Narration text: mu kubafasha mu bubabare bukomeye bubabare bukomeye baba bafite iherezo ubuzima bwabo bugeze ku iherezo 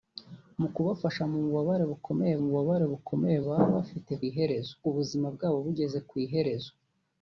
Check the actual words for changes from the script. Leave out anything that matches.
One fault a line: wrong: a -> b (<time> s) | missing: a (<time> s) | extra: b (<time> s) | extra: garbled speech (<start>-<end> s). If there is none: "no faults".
no faults